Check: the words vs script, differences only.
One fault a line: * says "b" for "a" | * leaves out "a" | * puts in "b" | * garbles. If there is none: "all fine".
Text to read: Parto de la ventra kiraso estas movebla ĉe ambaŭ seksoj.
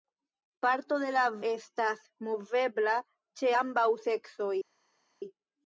* leaves out "ventra kiraso"